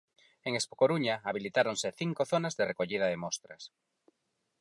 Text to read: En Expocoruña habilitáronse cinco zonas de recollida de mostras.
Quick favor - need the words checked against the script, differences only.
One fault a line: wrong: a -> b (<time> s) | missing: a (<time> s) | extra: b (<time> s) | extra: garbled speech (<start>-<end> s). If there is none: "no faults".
no faults